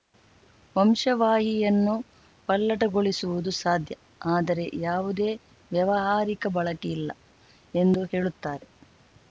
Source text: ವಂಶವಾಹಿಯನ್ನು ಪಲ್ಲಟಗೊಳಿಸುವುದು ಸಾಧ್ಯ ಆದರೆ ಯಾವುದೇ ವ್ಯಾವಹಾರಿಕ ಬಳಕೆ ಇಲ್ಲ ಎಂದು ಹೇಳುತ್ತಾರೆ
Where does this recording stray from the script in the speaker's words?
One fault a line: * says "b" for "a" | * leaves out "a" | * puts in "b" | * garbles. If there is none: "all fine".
all fine